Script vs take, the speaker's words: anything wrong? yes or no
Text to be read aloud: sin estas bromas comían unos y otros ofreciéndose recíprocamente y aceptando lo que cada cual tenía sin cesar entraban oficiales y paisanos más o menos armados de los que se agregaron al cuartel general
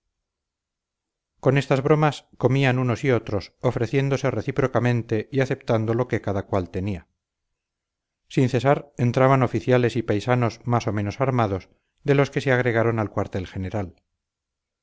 yes